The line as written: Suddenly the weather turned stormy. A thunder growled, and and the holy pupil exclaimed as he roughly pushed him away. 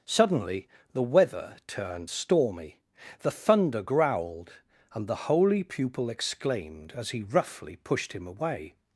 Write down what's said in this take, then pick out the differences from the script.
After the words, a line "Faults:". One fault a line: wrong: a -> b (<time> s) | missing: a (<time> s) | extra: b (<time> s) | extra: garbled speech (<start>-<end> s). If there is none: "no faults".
Suddenly the weather turned stormy. The thunder growled, and the holy pupil exclaimed as he roughly pushed him away.
Faults:
wrong: A -> The (3.2 s)
missing: and (5.1 s)